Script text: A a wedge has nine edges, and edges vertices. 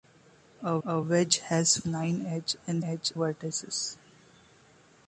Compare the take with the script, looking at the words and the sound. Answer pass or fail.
pass